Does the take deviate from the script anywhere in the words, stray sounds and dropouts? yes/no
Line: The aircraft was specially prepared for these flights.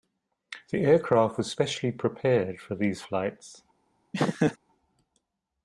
yes